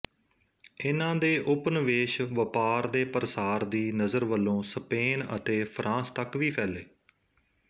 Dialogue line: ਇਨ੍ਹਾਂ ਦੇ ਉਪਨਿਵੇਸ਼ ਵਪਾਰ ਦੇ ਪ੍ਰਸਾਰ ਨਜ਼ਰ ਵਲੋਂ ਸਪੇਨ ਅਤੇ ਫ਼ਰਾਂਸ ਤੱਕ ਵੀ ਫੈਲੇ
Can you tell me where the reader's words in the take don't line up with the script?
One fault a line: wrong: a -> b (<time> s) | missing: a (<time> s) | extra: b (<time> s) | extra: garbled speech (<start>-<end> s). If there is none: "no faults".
extra: ਦੀ (3.6 s)